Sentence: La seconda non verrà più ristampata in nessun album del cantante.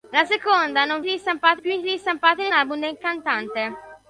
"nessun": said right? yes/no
no